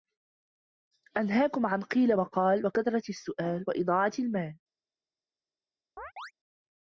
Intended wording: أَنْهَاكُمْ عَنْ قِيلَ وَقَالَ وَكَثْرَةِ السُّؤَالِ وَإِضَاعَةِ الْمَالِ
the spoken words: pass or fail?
pass